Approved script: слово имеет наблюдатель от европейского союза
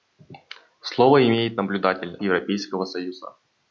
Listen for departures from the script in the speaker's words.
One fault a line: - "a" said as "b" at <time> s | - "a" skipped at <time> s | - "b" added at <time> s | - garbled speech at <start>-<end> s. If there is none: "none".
- "от" skipped at 2.2 s